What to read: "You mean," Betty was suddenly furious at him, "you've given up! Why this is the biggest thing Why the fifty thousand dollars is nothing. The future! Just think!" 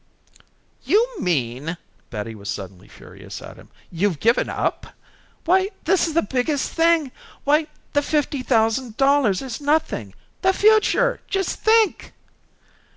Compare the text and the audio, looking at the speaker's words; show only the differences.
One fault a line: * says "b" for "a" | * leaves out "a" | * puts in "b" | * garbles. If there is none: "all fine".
all fine